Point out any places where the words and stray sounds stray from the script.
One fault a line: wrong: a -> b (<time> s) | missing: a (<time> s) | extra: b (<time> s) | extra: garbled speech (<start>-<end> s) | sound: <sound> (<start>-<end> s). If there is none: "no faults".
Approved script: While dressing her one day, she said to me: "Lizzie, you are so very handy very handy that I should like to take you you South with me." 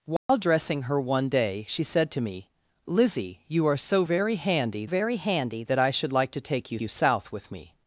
sound: dropout (0.2-0.3 s)